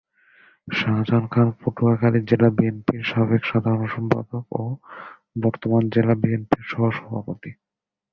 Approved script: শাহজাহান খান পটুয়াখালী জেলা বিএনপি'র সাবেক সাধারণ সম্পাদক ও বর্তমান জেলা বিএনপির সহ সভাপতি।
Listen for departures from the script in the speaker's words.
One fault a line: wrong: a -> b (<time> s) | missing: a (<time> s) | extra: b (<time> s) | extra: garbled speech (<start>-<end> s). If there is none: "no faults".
no faults